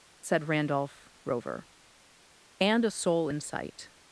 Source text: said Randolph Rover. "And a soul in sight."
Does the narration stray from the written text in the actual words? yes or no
no